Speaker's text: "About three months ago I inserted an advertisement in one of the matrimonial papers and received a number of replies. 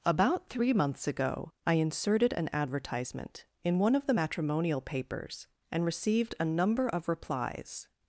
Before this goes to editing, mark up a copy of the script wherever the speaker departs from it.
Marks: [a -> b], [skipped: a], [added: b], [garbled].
"About three months ago I inserted an advertisement in one of the matrimonial papers and received a number of replies.